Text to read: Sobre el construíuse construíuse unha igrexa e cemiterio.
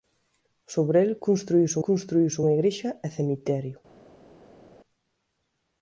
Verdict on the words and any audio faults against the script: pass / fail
pass